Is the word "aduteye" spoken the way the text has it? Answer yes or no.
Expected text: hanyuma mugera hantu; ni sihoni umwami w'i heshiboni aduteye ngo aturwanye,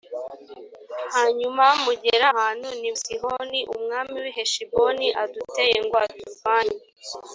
yes